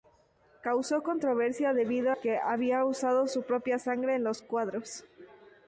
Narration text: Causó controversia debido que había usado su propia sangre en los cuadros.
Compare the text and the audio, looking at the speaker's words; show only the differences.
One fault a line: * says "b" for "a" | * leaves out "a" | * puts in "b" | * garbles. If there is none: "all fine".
all fine